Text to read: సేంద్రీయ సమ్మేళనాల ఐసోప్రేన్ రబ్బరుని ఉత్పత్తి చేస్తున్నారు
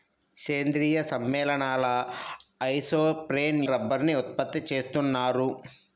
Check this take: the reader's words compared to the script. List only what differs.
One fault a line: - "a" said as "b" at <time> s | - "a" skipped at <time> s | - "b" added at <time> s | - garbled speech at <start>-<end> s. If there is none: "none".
none